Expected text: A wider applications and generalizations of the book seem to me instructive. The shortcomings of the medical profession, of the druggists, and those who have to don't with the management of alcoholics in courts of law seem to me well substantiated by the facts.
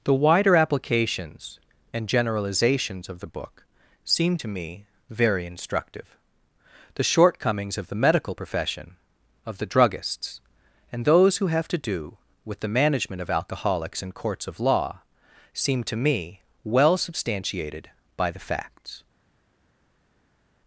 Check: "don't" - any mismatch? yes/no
yes